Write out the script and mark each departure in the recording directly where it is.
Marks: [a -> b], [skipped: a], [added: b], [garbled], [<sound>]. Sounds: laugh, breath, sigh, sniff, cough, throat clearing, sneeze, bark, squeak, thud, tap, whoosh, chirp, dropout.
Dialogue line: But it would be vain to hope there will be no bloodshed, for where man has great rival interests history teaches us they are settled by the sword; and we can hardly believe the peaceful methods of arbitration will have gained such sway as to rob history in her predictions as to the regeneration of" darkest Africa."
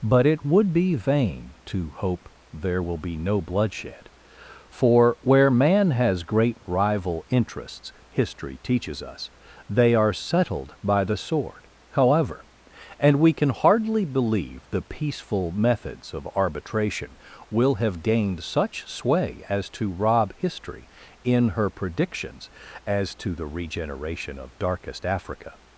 But it would be vain to hope there will be no bloodshed, for where man has great rival interests history teaches us they are settled by the sword; [added: however] and we can hardly believe the peaceful methods of arbitration will have gained such sway as to rob history in her predictions as to the regeneration of" darkest Africa."